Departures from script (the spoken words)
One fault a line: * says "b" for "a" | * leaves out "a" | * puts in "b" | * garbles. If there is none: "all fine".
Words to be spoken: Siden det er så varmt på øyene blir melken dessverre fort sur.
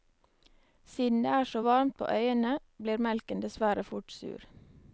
all fine